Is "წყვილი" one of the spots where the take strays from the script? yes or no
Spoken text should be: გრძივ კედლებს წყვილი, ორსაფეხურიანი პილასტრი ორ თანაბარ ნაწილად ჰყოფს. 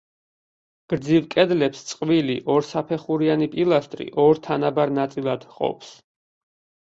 no